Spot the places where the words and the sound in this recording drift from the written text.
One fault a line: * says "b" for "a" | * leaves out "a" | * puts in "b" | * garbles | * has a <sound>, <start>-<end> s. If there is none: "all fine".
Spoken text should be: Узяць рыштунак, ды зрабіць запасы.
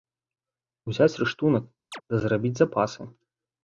* has a chirp, 1.9-2.0 s